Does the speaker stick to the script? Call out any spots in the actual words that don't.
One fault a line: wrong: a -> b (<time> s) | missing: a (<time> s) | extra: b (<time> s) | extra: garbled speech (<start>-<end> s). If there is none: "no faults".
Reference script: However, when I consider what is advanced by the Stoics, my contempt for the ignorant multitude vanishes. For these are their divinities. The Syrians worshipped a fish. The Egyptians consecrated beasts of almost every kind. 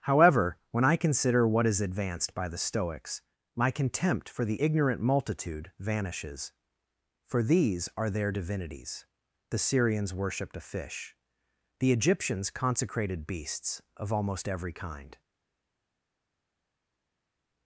no faults